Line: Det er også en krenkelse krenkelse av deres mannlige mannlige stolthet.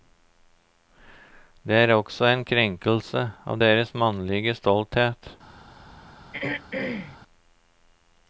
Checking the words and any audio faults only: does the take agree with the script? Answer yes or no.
no